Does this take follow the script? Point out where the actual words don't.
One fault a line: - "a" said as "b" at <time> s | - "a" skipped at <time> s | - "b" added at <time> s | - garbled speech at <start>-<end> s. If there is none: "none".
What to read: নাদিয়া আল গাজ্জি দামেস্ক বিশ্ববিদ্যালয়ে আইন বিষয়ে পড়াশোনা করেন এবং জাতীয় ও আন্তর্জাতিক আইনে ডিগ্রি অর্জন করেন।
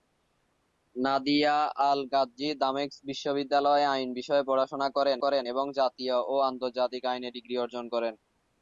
- "করেন" added at 5.2 s